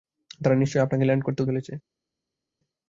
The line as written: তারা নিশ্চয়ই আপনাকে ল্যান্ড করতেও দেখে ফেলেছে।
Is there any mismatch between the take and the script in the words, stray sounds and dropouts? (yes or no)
yes